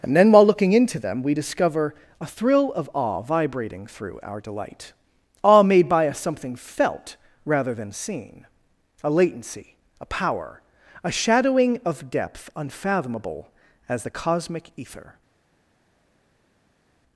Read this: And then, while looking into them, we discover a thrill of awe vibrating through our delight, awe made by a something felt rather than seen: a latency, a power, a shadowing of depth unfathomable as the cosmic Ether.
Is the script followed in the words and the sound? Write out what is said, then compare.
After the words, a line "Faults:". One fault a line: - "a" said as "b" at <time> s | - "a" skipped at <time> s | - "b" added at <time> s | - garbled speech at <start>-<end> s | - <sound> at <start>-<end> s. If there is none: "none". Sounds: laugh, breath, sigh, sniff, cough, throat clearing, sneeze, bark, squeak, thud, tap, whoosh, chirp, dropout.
And then, while looking into them, we discover a thrill of awe vibrating through our delight, awe made by a something felt rather than seen: a latency, a power, a shadowing of depth unfathomable as the cosmic Ether.
Faults:
none